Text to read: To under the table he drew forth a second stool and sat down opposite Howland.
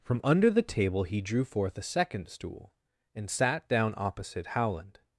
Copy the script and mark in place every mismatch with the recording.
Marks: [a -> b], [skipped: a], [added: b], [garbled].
[To -> From] under the table he drew forth a second stool and sat down opposite Howland.